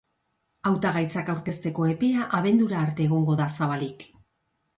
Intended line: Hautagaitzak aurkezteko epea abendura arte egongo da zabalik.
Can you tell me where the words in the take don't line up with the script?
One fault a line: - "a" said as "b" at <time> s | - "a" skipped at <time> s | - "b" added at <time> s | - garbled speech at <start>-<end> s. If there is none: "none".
none